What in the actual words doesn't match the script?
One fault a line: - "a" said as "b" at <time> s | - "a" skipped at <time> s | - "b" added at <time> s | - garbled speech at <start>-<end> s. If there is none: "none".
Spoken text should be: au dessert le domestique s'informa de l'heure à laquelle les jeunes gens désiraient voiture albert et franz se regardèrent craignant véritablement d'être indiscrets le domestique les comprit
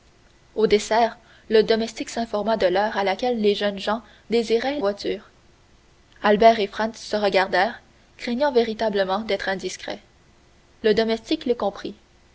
none